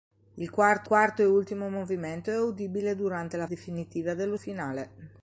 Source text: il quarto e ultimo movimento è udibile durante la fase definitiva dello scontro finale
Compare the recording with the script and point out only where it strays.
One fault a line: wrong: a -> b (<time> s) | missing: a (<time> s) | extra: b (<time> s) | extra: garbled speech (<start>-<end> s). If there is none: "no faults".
extra: quarto (0.8 s)
missing: fase (3.5 s)
missing: scontro (4.4 s)